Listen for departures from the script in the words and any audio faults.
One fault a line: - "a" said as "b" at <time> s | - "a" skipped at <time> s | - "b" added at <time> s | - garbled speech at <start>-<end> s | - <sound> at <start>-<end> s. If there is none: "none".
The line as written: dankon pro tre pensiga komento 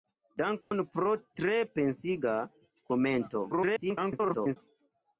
- dropout at 0.6-0.7 s
- garbled speech at 3.5-4.6 s